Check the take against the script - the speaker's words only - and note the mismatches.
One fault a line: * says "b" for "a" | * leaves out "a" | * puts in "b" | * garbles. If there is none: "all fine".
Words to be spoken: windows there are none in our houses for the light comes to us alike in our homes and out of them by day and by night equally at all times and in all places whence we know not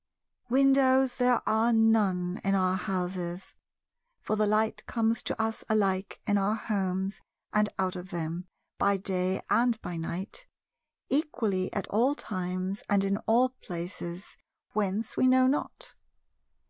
all fine